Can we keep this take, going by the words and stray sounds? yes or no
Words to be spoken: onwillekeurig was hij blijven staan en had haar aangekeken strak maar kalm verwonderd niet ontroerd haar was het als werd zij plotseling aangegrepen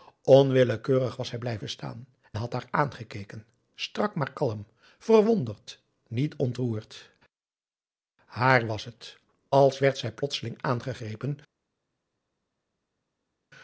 no